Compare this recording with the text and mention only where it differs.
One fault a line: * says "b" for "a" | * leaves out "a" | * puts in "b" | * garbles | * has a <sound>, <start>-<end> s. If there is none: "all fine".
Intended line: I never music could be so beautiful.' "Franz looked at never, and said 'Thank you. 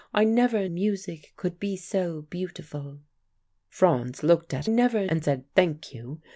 all fine